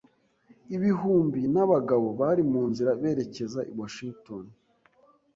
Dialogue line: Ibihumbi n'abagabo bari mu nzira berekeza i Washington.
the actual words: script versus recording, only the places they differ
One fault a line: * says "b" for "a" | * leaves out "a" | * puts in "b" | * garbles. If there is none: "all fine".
all fine